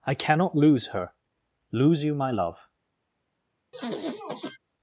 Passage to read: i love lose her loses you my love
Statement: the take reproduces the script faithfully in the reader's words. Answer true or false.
false